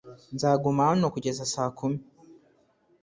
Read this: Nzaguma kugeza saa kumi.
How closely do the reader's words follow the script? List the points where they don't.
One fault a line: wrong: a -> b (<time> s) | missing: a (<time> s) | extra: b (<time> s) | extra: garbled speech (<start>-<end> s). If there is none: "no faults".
extra: hano (0.9 s)